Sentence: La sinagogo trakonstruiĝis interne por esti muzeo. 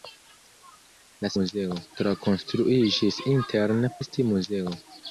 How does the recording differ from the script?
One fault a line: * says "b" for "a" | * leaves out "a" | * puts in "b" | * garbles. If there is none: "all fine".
* says "muzeo" for "sinagogo"
* leaves out "por"